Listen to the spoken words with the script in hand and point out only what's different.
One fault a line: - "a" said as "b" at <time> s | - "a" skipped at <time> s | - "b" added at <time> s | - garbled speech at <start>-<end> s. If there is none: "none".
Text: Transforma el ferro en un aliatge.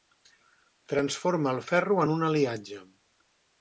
none